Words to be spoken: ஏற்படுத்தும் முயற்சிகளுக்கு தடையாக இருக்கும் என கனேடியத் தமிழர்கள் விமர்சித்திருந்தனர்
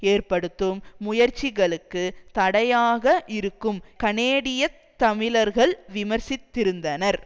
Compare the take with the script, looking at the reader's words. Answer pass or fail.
fail